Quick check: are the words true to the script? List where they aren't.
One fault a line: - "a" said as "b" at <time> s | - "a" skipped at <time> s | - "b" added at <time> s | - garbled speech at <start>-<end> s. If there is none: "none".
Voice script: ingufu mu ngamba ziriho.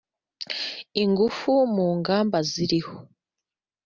none